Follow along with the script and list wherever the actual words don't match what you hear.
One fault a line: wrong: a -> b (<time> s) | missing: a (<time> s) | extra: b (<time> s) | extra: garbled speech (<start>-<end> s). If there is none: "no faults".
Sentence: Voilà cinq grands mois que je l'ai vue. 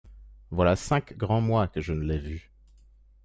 extra: ne (1.9 s)